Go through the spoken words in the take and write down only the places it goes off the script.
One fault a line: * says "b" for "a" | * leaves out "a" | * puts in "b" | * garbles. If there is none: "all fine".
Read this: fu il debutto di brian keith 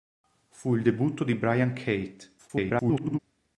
* garbles